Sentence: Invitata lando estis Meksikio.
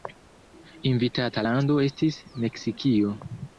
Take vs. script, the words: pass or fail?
pass